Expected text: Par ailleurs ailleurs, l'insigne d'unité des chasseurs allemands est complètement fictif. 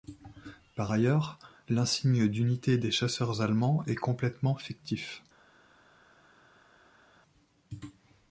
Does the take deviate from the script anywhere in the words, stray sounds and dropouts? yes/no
yes